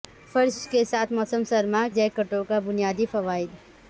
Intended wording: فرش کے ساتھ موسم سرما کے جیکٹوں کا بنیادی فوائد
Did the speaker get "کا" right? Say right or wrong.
right